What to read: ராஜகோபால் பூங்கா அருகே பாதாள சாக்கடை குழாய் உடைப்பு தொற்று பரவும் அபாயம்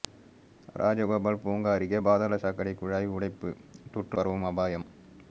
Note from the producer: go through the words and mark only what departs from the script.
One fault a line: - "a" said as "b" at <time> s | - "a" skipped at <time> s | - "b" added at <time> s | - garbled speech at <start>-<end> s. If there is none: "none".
none